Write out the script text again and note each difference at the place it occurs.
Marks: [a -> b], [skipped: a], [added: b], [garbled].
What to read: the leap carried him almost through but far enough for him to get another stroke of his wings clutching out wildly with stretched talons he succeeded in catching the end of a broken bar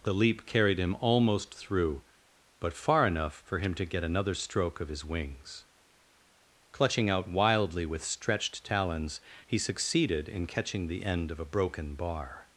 the leap carried him almost through but far enough for him to get another stroke of his wings clutching out wildly with stretched talons he succeeded in catching the end of a broken bar